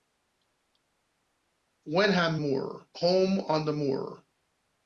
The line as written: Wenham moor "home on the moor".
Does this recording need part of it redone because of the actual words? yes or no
no